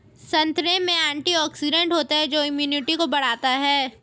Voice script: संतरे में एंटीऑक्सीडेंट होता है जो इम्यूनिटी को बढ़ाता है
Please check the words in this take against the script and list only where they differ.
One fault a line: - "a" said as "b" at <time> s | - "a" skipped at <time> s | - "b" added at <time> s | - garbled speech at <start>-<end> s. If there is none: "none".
none